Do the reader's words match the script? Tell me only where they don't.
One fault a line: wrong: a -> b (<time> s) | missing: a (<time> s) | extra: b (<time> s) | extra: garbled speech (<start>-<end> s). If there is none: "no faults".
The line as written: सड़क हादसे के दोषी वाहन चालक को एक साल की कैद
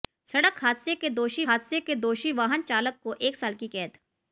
extra: हादसे के दोषी (1.5 s)